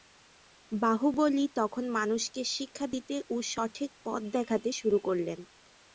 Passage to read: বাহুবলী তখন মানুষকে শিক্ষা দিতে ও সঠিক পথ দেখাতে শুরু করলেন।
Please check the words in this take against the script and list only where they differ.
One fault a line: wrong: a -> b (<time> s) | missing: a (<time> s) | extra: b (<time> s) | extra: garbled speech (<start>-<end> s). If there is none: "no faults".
no faults